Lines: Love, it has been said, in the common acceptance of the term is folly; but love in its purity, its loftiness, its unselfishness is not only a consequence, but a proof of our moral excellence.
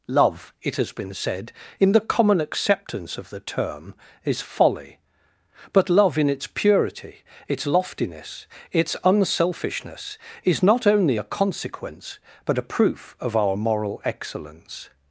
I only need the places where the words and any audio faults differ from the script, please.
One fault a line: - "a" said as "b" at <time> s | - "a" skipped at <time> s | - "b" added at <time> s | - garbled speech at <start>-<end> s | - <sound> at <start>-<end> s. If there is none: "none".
none